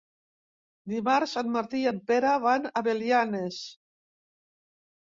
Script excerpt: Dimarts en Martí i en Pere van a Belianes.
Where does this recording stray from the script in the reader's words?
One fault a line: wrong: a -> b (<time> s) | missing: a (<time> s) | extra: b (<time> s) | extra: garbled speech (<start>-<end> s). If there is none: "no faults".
no faults